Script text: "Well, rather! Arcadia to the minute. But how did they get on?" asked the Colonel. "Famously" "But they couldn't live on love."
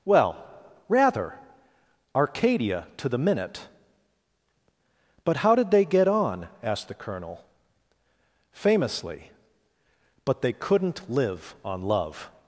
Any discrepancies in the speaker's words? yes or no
no